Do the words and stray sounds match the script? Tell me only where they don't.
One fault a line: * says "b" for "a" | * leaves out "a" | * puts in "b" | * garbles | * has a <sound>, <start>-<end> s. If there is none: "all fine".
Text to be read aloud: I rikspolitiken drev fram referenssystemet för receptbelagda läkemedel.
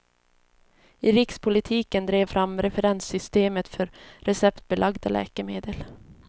all fine